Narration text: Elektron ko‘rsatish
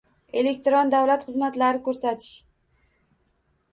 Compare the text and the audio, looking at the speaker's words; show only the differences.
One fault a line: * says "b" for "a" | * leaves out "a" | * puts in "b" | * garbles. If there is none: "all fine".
* puts in "davlat xizmatlari"